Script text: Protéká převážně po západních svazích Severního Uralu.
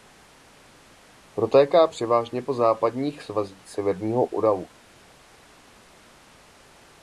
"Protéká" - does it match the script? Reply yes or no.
yes